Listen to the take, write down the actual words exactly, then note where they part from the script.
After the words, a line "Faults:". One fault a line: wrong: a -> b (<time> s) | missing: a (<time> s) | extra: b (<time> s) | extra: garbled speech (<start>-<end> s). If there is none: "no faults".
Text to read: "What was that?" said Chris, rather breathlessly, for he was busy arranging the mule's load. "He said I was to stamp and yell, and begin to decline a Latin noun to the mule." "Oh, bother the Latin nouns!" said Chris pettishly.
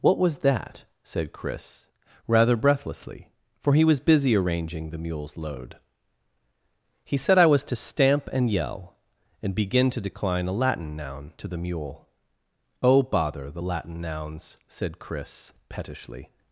"What was that?" said Chris, rather breathlessly, for he was busy arranging the mule's load. "He said I was to stamp and yell, and begin to decline a Latin noun to the mule." "Oh, bother the Latin nouns!" said Chris pettishly.
Faults:
no faults